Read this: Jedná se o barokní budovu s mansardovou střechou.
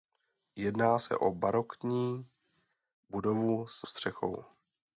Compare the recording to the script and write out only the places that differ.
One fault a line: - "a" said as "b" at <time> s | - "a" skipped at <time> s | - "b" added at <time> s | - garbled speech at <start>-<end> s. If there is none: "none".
- "mansardovou" skipped at 3.8 s